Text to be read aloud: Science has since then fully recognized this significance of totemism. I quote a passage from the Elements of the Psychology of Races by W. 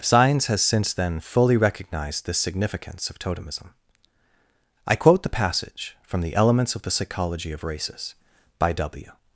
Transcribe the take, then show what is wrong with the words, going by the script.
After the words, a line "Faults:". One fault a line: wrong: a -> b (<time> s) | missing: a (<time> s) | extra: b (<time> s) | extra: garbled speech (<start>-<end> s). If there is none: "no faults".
Science has since then fully recognized this significance of totemism. I quote the passage from the Elements of the Psychology of Races by W.
Faults:
wrong: a -> the (5.2 s)